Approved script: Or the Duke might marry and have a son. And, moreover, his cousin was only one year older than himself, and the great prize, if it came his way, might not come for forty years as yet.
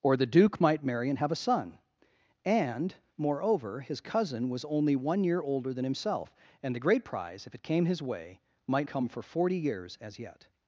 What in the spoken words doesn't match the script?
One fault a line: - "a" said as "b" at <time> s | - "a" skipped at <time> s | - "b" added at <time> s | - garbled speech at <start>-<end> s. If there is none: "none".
- "not" skipped at 8.9 s